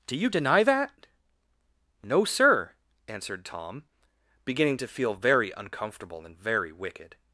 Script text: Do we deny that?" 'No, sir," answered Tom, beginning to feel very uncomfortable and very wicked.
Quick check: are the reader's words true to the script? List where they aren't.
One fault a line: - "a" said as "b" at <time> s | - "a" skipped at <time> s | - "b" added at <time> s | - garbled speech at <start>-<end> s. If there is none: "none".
- "we" said as "you" at 0.1 s